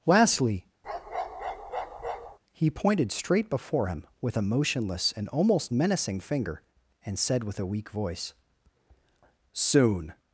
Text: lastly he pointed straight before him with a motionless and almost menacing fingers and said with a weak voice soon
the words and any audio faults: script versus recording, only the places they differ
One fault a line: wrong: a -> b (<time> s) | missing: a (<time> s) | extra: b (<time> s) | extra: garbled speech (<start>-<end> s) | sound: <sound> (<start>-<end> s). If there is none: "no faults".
sound: bark (0.8-2.4 s)
wrong: fingers -> finger (6.2 s)